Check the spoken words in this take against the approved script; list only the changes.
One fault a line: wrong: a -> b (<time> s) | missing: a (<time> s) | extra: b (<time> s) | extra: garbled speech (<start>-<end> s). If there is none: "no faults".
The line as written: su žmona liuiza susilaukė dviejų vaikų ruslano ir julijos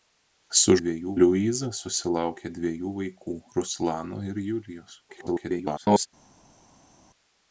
wrong: žmona -> dviejų (0.8 s)
extra: garbled speech (5.1-6.1 s)